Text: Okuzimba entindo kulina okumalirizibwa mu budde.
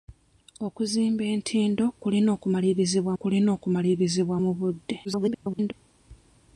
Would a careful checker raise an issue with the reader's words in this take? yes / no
yes